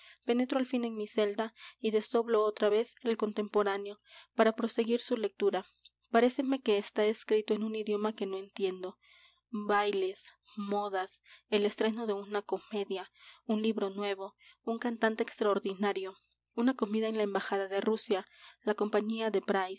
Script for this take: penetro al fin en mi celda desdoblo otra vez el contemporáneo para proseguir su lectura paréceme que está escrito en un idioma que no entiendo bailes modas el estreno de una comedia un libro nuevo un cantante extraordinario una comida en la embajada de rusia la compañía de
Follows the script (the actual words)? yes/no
no